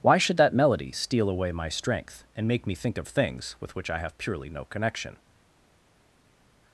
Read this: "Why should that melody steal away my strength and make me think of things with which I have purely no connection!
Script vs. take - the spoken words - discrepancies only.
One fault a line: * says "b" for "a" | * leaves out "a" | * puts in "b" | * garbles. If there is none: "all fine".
all fine